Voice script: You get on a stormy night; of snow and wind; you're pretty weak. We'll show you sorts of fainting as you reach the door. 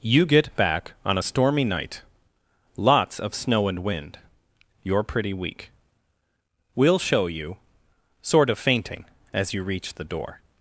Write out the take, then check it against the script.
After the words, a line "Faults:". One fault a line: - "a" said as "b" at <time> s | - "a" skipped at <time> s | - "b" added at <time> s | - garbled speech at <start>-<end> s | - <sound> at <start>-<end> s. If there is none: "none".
You get back on a stormy night; lots of snow and wind; you're pretty weak. We'll show you sort of fainting as you reach the door.
Faults:
- "back" added at 0.6 s
- "lots" added at 2.8 s
- "sorts" said as "sort" at 8.2 s